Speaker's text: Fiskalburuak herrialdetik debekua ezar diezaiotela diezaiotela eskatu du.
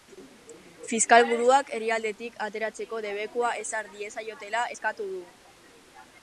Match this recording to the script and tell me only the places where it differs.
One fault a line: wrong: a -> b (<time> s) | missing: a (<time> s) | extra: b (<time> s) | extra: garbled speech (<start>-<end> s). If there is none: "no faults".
extra: ateratzeko (2.5 s)
missing: diezaiotela (4.7 s)